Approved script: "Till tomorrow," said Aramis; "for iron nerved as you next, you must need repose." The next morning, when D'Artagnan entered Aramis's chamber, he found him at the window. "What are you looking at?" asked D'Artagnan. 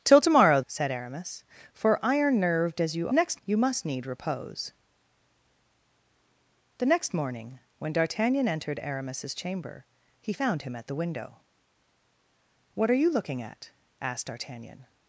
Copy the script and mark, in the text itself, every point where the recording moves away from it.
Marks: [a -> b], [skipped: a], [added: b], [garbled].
"Till tomorrow," said Aramis; "for iron nerved as you next, you must need repose." The next morning, when D'Artagnan entered Aramis's chamber, he found him at the window. "What are you looking at?" asked D'Artagnan.